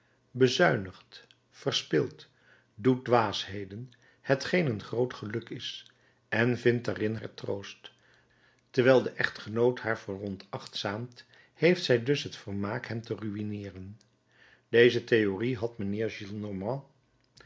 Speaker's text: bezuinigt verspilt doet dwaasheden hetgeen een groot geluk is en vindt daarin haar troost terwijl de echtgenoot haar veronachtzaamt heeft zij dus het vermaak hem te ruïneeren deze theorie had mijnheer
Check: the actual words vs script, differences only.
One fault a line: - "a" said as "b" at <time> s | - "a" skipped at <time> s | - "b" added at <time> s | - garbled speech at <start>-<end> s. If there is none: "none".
none